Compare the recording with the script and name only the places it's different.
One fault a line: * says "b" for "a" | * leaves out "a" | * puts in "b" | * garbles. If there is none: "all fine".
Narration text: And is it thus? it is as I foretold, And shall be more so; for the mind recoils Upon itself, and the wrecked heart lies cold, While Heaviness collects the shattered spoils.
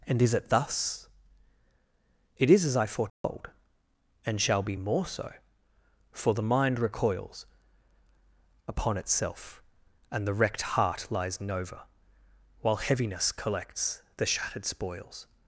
* says "nova" for "cold"